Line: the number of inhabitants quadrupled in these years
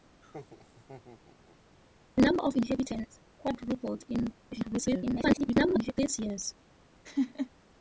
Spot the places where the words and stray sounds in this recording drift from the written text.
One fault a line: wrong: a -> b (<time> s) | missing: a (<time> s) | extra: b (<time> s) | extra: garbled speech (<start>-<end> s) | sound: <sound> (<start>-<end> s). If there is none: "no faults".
sound: laugh (0.2-1.6 s)
extra: garbled speech (4.5-5.9 s)
sound: laugh (7.0-7.5 s)